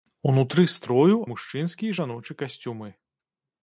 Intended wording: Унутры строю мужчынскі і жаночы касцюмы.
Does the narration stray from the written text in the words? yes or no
no